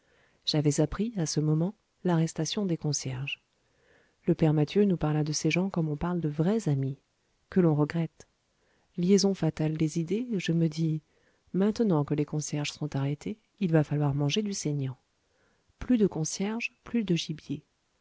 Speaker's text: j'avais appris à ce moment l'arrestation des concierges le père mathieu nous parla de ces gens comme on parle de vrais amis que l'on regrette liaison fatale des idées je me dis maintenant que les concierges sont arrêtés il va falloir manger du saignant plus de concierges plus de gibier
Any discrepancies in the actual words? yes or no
no